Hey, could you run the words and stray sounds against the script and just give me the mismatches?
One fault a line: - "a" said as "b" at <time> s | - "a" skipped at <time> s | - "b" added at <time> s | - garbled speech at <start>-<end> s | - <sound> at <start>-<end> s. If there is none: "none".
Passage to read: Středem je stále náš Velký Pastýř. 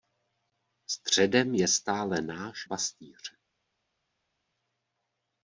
- "Velký" skipped at 2.7 s